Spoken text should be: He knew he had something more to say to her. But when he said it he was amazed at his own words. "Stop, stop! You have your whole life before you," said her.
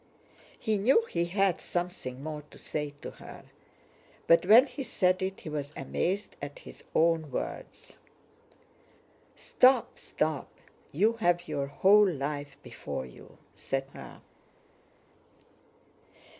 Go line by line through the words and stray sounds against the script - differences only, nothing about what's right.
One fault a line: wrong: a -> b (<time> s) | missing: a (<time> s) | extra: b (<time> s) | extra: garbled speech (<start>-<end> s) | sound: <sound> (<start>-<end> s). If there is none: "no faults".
no faults